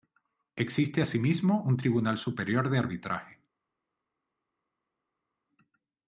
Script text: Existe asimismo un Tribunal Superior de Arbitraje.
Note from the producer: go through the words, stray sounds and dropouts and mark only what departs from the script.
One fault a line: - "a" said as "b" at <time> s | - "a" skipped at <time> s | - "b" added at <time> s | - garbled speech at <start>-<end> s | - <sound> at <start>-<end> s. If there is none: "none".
none